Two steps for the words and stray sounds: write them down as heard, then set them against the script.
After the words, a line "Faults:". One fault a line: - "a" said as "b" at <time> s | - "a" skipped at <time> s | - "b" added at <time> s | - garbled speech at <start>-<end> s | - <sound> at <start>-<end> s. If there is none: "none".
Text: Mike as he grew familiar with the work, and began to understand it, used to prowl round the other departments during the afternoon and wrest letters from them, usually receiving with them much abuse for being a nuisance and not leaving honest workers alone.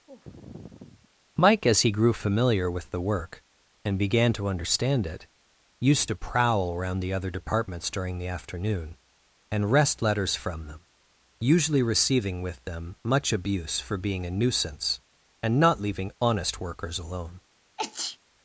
Mike as he grew familiar with the work, and began to understand it, used to prowl around the other departments during the afternoon and wrest letters from them, usually receiving with them much abuse for being a nuisance and not leaving honest workers alone.
Faults:
- sigh at 0.1-1.1 s
- "round" said as "around" at 6.7 s
- sneeze at 17.8-18.2 s